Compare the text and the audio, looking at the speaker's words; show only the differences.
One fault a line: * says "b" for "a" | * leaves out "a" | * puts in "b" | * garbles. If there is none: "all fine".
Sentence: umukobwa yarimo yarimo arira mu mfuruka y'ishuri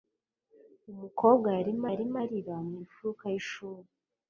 all fine